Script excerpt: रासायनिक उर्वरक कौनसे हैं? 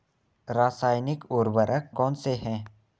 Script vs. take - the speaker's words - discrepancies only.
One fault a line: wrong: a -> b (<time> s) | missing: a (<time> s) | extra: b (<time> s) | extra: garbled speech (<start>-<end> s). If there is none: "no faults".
no faults